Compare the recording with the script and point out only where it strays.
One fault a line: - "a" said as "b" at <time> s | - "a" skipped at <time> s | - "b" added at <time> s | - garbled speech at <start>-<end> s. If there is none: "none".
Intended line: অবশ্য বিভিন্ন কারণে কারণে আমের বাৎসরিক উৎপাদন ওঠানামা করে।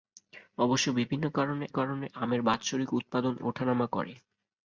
none